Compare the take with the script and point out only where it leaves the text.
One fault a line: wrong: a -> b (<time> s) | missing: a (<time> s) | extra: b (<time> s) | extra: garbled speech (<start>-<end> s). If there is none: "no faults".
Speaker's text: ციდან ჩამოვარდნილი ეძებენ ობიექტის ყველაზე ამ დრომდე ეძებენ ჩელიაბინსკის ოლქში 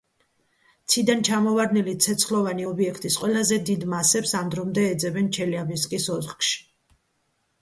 wrong: ეძებენ -> ცეცხლოვანი (2.0 s)
extra: დიდ მასებს (3.7 s)